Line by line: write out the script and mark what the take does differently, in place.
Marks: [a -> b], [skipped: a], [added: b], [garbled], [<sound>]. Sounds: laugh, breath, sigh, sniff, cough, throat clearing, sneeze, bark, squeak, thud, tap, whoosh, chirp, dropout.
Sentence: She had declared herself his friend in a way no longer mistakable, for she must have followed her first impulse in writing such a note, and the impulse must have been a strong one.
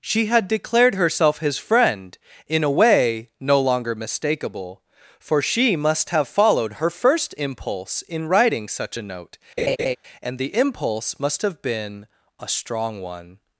She had declared herself his friend in a way no longer mistakable, for she must have followed her first impulse in writing such a note, [laugh] and the impulse must have been a strong one.